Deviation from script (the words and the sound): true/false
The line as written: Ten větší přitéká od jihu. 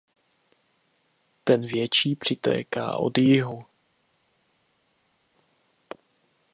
false